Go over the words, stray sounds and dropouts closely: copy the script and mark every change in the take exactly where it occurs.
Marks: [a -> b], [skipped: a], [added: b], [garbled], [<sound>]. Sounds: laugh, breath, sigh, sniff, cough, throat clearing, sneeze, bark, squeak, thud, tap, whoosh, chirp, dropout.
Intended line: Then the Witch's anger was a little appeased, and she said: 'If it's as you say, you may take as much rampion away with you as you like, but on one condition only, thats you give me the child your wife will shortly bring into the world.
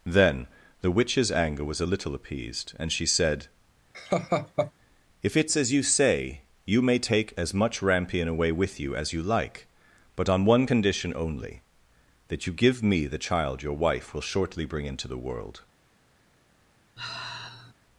Then the Witch's anger was a little appeased, and she said: [laugh] 'If it's as you say, you may take as much rampion away with you as you like, but on one condition only, [thats -> that] you give me the child your wife will shortly bring into the world. [sigh]